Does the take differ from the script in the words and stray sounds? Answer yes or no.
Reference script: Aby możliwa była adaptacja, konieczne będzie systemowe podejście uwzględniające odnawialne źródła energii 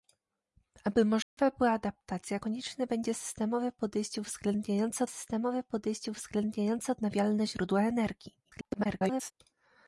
yes